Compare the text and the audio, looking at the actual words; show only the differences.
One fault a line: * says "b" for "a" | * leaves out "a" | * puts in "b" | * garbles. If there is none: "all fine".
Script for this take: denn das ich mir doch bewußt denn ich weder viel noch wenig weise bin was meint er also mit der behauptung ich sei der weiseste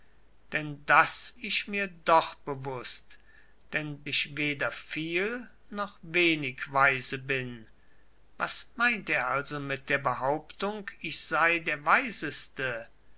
all fine